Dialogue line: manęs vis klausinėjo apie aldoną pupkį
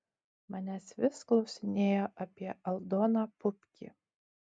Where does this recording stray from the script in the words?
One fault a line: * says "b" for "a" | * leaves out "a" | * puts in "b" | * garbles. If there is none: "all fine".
all fine